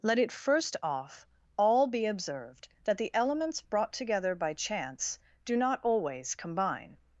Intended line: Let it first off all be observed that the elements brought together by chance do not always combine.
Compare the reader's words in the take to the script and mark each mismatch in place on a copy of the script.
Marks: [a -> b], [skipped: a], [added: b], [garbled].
Let it first off all be observed that the elements brought together by chance do not always combine.